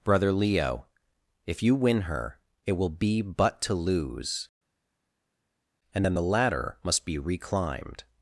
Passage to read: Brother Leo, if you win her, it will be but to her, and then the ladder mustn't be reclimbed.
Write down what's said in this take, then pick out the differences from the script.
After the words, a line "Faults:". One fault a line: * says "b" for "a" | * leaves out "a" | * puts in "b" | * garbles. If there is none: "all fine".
Brother Leo, if you win her, it will be but to lose, and then the ladder must be reclimbed.
Faults:
* says "lose" for "her"
* says "must" for "mustn't"